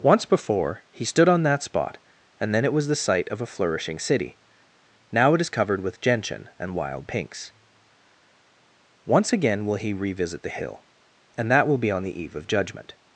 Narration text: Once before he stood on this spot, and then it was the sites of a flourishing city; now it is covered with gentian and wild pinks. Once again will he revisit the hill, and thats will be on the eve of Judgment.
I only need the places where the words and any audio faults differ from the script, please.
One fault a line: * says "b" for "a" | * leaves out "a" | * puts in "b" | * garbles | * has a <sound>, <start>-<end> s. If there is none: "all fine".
* says "that" for "this"
* says "site" for "sites"
* says "that" for "thats"